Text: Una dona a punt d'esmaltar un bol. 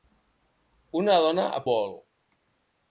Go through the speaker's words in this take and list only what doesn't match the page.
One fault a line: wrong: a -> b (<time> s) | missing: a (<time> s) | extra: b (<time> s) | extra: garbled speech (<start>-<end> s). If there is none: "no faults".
missing: punt d'esmaltar un (1.6 s)